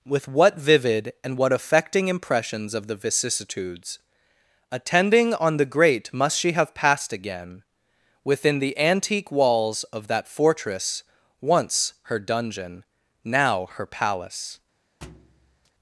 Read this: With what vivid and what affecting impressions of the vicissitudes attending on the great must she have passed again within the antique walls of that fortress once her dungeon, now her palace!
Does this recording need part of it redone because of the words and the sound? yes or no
yes